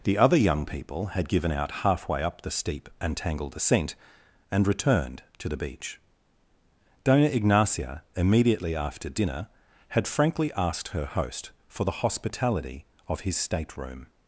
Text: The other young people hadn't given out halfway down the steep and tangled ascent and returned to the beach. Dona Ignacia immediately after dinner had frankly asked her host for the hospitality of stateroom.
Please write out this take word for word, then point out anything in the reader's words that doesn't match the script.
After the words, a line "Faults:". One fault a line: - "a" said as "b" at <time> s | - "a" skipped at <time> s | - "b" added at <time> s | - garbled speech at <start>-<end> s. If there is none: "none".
The other young people had given out halfway up the steep and tangled ascent and returned to the beach. Dona Ignacia immediately after dinner had frankly asked her host for the hospitality of his stateroom.
Faults:
- "hadn't" said as "had" at 1.1 s
- "down" said as "up" at 2.2 s
- "his" added at 13.2 s